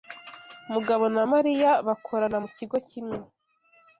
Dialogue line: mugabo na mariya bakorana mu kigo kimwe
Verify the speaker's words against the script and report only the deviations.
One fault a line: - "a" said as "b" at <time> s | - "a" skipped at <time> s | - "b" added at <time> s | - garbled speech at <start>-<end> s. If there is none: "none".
none